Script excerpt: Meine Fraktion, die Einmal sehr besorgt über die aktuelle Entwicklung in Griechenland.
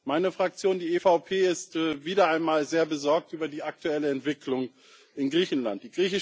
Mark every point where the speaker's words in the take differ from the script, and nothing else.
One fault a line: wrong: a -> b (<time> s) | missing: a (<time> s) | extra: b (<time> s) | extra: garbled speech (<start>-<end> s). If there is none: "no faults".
extra: EVP ist wieder (0.9 s)